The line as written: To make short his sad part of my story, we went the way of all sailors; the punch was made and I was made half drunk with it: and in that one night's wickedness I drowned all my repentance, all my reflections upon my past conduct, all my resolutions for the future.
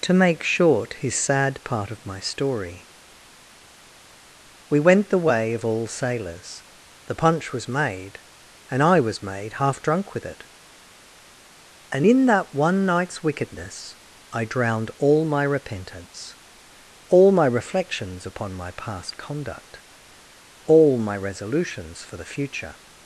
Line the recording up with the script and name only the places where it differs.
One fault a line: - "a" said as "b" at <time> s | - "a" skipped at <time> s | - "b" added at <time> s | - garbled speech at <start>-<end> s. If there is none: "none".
none